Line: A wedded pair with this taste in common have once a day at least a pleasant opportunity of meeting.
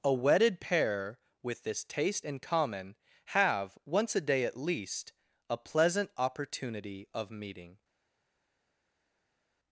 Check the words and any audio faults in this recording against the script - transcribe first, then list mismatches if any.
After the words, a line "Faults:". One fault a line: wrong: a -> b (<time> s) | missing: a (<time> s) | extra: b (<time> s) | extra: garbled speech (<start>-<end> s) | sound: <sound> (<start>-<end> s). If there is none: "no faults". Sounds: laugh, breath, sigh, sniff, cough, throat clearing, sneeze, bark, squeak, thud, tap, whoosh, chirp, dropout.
A wedded pair with this taste in common have once a day at least a pleasant opportunity of meeting.
Faults:
no faults